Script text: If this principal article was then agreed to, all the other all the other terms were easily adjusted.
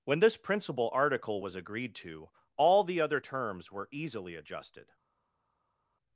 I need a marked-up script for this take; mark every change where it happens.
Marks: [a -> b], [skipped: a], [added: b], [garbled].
[If -> When] this principal article was [skipped: then] agreed to, all the other [skipped: all the other] terms were easily adjusted.